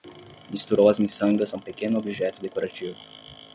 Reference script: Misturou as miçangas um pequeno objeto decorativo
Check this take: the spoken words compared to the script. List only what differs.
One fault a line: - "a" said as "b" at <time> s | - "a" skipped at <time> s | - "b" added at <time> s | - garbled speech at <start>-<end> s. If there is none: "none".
none